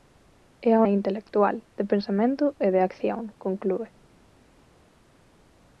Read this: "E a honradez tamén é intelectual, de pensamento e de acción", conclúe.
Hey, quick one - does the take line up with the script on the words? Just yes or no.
no